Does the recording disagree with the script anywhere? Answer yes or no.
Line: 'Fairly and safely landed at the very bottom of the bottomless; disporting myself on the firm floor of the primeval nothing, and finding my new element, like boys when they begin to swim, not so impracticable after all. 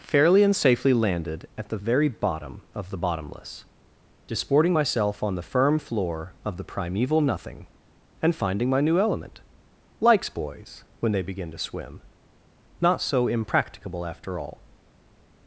yes